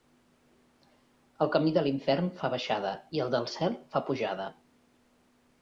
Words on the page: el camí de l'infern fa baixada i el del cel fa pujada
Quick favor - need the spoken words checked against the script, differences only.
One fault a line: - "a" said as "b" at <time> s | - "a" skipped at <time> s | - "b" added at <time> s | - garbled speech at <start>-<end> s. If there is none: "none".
none